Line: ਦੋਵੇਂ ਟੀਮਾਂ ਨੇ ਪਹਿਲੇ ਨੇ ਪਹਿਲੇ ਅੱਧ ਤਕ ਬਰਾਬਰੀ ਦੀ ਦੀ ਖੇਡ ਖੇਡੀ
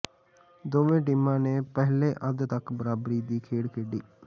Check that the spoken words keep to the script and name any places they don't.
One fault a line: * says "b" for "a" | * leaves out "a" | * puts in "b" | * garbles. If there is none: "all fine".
* leaves out "ਨੇ ਪਹਿਲੇ"
* leaves out "ਦੀ"